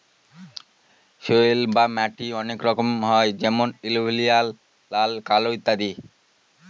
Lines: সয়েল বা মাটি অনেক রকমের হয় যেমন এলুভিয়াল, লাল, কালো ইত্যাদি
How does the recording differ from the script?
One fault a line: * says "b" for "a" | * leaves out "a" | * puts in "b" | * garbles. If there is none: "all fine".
all fine